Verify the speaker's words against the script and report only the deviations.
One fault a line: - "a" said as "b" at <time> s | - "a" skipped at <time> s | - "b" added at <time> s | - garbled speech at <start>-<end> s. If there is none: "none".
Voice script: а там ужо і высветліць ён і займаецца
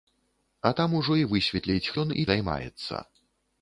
none